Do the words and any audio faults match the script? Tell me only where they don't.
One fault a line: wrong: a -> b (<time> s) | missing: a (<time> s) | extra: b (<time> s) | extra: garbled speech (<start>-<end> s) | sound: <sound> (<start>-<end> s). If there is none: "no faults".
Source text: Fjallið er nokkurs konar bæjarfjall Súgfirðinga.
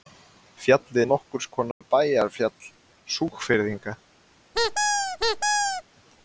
sound: dropout (1.7-1.8 s)
sound: squeak (4.5-5.8 s)